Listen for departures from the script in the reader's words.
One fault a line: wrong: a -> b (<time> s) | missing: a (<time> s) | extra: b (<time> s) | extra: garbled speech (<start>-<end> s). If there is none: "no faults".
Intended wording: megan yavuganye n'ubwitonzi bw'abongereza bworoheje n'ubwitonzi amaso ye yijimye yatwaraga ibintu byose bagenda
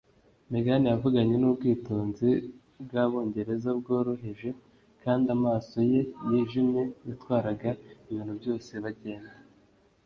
wrong: n'ubwitonzi -> kandi (5.0 s)